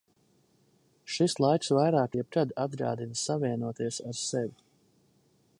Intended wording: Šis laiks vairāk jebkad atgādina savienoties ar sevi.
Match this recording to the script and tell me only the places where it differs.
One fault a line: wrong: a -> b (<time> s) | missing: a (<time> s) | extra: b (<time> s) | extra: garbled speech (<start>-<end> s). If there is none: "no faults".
no faults